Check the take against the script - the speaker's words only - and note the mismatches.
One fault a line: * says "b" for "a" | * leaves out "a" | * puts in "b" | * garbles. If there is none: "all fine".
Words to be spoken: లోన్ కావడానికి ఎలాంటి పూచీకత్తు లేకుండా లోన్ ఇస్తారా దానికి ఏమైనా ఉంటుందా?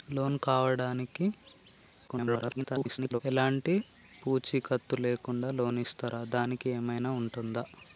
* garbles